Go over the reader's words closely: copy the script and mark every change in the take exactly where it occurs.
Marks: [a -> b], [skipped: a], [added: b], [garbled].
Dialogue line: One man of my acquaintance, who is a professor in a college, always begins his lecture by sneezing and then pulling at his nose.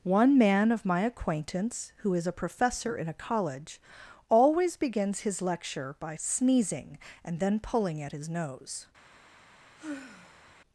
One man of my acquaintance, who is a professor in a college, always begins his lecture by sneezing and then pulling at his nose.